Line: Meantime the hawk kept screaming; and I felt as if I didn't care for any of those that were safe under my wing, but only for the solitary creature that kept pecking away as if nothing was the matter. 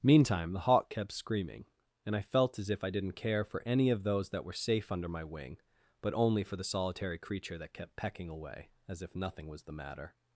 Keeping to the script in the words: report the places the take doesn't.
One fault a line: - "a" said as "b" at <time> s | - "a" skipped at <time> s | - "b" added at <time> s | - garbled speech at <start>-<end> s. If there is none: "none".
none